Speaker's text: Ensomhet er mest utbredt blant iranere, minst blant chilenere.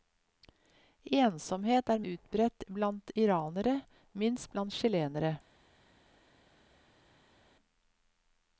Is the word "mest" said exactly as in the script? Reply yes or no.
no